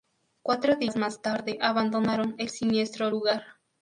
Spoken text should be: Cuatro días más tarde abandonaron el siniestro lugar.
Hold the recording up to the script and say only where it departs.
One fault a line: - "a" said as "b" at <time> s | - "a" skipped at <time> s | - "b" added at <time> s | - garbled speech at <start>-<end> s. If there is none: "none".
none